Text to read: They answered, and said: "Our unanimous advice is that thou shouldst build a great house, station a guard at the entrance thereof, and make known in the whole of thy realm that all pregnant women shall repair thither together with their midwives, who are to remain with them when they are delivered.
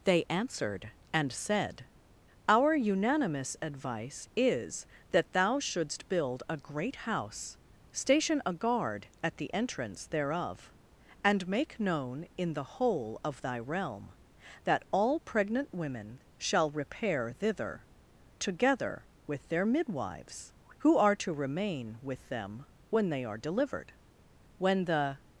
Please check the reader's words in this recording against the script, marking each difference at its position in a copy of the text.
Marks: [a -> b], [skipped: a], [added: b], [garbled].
They answered, and said: "Our unanimous advice is that thou shouldst build a great house, station a guard at the entrance thereof, and make known in the whole of thy realm that all pregnant women shall repair thither together with their midwives, who are to remain with them when they are delivered. [added: When the]